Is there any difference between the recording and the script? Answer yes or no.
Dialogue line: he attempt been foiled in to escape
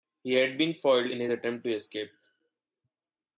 yes